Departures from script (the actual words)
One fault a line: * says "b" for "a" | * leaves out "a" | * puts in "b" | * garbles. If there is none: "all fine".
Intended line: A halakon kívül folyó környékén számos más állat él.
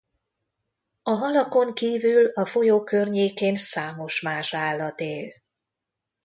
* puts in "a"